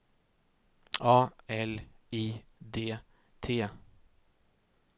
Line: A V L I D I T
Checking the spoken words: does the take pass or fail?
fail